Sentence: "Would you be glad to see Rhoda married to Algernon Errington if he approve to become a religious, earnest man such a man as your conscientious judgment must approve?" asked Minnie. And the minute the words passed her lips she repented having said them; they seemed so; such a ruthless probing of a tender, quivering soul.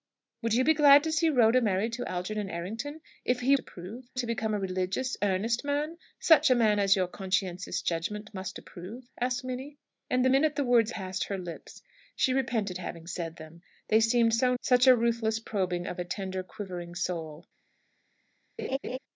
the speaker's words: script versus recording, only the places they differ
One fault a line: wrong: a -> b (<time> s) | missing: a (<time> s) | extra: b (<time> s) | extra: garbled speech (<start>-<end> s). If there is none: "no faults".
no faults